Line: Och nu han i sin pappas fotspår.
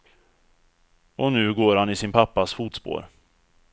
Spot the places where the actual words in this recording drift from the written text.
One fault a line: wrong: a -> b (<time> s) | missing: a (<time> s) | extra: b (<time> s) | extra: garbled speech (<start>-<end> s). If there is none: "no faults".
extra: går (1.5 s)